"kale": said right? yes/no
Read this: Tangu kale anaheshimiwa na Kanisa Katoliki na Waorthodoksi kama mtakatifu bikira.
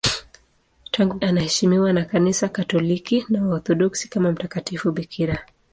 no